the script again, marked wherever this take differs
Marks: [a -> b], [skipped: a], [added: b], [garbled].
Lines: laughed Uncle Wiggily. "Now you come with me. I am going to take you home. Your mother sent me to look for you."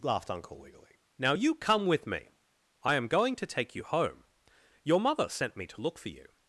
laughed Uncle Wiggily. "Now you come with me. I am going to take you home. Your mother sent me to look for you."